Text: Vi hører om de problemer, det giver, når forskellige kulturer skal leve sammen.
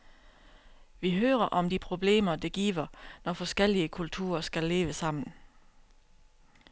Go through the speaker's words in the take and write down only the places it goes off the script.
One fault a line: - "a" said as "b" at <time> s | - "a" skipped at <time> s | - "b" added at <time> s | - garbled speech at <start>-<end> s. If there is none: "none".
none